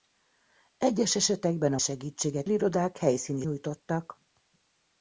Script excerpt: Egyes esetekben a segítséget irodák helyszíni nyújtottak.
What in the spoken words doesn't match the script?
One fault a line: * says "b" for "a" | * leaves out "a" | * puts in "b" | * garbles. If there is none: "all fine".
all fine